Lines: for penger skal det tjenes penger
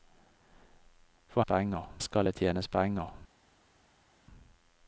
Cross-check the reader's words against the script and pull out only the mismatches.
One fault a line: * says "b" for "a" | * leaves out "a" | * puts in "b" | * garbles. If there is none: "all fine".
all fine